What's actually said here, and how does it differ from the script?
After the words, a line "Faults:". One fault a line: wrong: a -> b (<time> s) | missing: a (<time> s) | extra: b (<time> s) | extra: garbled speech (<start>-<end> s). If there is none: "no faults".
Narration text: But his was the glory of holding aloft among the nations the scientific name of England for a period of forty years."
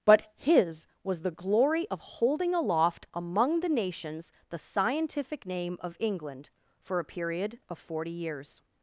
But his was the glory of holding aloft among the nations the scientific name of England for a period of forty years."
Faults:
no faults